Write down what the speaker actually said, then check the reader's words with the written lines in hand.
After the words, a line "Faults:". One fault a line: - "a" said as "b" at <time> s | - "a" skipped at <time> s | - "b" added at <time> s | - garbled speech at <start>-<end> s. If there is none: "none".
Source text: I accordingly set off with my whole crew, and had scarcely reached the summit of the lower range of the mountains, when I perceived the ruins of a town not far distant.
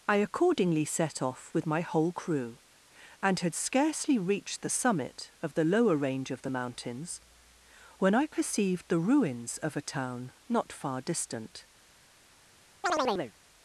I accordingly set off with my whole crew, and had scarcely reached the summit of the lower range of the mountains, when I perceived the ruins of a town not far distant.
Faults:
none